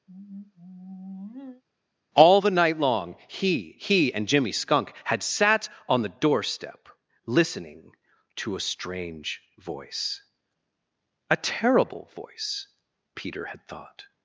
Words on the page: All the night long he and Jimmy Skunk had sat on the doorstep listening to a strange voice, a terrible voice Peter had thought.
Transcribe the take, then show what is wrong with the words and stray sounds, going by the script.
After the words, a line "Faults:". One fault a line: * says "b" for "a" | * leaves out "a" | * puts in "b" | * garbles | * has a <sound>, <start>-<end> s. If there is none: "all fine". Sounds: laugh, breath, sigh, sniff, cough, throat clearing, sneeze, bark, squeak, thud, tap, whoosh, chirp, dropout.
All the night long he he and Jimmy Skunk had sat on the doorstep listening to a strange voice, a terrible voice Peter had thought.
Faults:
* has a sigh, 0.1-1.6 s
* puts in "he"